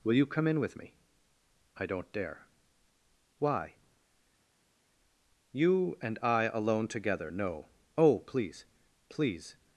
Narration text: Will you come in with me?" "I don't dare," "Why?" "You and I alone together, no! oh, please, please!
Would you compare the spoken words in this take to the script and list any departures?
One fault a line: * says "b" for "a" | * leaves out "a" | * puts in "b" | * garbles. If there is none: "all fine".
all fine